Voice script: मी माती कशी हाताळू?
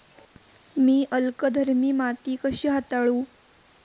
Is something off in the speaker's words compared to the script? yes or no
yes